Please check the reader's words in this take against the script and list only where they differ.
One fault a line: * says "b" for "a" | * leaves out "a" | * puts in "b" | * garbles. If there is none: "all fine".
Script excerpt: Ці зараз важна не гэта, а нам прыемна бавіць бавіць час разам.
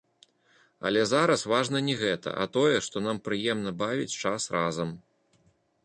* says "Але" for "Ці"
* puts in "тое што"
* leaves out "бавіць"